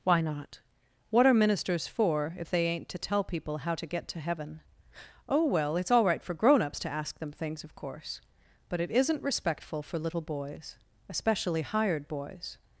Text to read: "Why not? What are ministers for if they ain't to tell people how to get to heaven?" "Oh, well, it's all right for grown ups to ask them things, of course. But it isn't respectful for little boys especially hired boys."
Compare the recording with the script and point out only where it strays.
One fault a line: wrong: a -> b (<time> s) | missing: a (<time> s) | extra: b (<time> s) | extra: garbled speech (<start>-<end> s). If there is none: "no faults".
no faults